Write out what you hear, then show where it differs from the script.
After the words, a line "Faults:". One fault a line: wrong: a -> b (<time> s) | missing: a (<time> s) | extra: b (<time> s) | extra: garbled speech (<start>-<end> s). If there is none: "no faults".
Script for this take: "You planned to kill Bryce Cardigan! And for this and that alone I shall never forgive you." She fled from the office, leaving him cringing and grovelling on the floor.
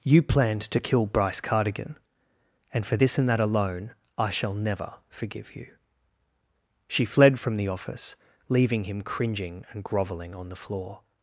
"You planned to kill Bryce Cardigan! And for this and that alone I shall never forgive you." She fled from the office, leaving him cringing and grovelling on the floor.
Faults:
no faults